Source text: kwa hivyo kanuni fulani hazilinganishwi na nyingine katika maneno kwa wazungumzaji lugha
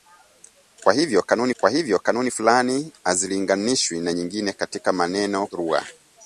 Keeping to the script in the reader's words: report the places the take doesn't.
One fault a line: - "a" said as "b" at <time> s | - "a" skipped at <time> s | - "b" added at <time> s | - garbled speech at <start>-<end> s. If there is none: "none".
- "kwa hivyo kanuni" added at 1.6 s
- "kwa wazungumzaji" skipped at 5.5 s